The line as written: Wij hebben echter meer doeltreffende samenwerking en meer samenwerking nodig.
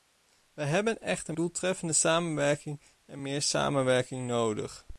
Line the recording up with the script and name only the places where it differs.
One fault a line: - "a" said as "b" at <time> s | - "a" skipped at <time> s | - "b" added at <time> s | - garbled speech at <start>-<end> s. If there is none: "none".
- "meer" skipped at 1.4 s